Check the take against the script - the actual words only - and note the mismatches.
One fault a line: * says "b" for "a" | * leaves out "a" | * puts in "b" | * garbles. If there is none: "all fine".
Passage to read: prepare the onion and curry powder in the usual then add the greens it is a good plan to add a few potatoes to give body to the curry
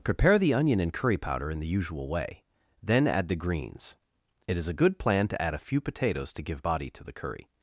* puts in "way"